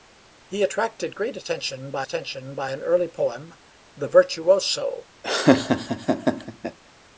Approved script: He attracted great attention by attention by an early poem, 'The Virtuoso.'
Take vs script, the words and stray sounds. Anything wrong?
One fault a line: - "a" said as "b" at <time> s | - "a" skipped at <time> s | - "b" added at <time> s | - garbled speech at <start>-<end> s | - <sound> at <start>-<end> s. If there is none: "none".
- laugh at 5.2-6.8 s